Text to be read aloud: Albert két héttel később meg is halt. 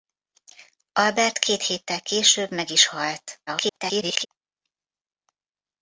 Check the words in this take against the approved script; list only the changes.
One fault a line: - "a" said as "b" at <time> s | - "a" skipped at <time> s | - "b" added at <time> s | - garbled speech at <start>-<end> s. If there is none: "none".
- garbled speech at 3.5-4.3 s